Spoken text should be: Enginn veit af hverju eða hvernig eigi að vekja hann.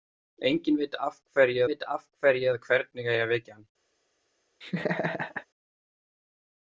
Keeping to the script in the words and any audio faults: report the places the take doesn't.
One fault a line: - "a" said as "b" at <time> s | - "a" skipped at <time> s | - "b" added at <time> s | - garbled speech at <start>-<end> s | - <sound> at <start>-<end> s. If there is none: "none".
- "veit af hverju" added at 1.7 s
- laugh at 4.6-5.5 s